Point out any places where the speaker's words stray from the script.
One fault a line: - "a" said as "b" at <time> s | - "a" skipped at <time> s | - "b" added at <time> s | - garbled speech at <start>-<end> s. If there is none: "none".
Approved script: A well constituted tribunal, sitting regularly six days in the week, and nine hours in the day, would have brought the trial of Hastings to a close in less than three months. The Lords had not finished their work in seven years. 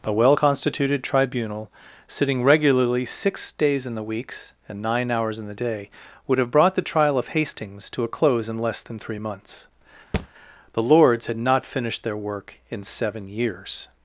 - "week" said as "weeks" at 4.0 s